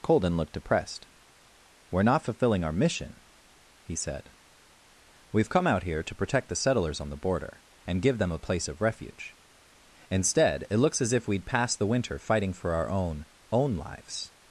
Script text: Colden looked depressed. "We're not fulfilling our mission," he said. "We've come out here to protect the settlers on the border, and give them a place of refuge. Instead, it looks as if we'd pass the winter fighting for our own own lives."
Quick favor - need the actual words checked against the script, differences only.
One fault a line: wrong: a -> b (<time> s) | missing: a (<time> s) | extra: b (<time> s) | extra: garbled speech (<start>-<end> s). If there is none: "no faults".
no faults